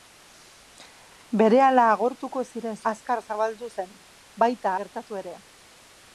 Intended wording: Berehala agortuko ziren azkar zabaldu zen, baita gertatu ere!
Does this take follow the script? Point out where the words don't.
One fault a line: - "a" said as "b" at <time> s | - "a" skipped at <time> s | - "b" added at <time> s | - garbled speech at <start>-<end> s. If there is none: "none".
none